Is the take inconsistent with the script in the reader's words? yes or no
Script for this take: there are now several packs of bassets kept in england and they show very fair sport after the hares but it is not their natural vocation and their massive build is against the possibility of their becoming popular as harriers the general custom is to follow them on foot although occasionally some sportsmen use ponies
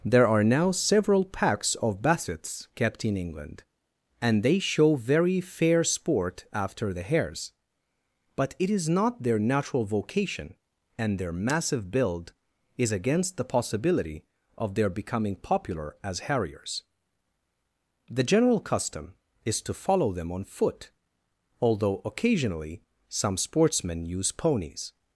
no